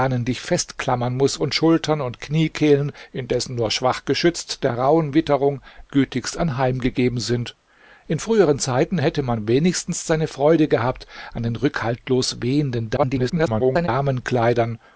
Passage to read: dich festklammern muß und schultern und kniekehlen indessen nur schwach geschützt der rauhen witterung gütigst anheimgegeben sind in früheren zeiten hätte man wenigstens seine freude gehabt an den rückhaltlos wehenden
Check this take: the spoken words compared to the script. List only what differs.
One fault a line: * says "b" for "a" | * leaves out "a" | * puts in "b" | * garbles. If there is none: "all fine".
* garbles